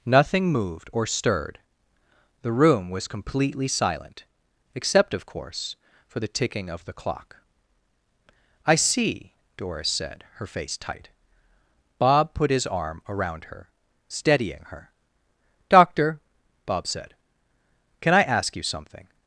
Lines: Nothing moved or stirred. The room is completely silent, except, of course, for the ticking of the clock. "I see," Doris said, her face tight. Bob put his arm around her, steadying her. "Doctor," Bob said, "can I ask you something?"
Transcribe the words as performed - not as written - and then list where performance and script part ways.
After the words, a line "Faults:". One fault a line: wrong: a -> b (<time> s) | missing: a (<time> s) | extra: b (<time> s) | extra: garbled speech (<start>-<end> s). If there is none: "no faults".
Nothing moved or stirred. The room was completely silent, except, of course, for the ticking of the clock. "I see," Doris said, her face tight. Bob put his arm around her, steadying her. "Doctor," Bob said, "can I ask you something?"
Faults:
wrong: is -> was (2.9 s)